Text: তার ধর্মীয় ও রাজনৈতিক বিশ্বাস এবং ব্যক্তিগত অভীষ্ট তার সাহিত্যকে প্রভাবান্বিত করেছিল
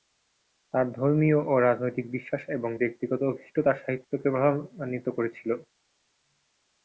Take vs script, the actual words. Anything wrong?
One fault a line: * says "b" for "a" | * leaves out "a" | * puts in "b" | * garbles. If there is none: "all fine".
all fine